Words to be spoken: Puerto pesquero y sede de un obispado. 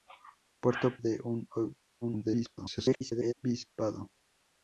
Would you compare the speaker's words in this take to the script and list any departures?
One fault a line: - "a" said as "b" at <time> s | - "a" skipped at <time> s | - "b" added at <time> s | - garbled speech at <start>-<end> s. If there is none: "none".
- "pesquero y sede" skipped at 1.0 s
- garbled speech at 2.0-3.3 s